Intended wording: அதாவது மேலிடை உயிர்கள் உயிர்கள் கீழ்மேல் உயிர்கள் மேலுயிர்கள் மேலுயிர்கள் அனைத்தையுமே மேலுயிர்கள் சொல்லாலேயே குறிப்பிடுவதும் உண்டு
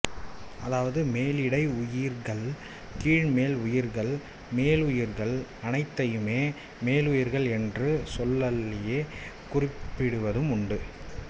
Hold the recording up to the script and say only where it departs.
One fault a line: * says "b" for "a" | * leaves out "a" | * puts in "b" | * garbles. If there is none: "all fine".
* leaves out "உயிர்கள்"
* leaves out "மேலுயிர்கள்"
* puts in "என்ற"